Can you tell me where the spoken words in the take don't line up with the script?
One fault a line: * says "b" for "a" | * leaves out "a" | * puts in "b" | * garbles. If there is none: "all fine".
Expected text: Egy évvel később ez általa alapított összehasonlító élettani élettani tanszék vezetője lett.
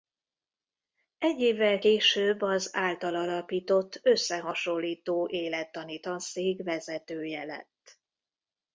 * says "az" for "ez"
* leaves out "élettani"